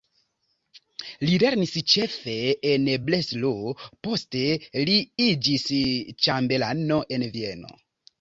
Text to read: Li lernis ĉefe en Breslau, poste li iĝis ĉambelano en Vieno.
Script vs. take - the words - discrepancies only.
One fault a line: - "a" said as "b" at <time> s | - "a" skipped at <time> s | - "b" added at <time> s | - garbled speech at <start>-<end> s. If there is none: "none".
none